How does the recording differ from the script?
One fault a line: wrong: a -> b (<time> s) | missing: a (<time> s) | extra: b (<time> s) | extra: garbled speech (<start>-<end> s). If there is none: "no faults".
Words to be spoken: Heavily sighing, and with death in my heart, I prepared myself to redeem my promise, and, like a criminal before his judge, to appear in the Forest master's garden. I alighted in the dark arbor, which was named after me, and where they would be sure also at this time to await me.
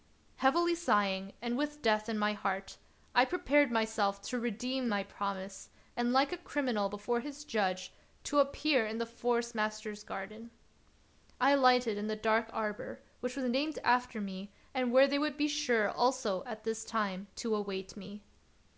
no faults